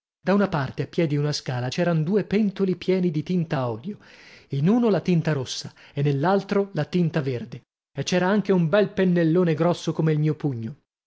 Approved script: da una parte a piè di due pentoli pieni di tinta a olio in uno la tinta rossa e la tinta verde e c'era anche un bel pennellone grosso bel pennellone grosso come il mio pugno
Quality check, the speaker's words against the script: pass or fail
fail